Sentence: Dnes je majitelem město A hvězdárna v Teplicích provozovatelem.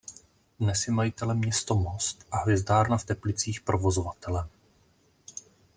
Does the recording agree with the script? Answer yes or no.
no